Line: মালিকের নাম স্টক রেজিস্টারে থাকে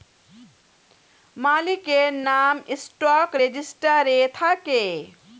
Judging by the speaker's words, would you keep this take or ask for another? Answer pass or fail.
pass